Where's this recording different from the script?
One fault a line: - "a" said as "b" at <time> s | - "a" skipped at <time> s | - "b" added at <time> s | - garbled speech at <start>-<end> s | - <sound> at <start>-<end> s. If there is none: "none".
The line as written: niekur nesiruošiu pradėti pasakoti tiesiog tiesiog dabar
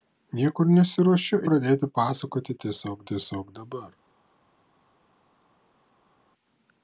none